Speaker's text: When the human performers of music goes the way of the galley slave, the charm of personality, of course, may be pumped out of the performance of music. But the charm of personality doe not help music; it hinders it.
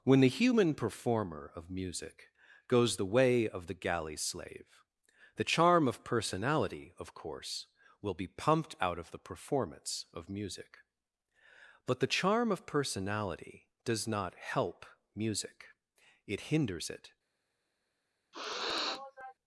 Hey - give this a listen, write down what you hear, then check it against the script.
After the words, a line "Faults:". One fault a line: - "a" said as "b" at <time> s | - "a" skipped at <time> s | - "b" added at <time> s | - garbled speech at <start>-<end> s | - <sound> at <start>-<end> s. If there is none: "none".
When the human performer of music goes the way of the galley slave, the charm of personality, of course, will be pumped out of the performance of music. But the charm of personality does not help music; it hinders it.
Faults:
- "performers" said as "performer" at 0.7 s
- "may" said as "will" at 8.0 s
- "doe" said as "does" at 13.8 s
- sniff at 18.3-19.3 s